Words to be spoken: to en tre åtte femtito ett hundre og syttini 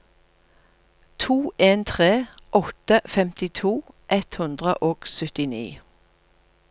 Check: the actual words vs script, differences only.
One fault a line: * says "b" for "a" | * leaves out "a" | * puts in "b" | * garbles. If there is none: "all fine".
all fine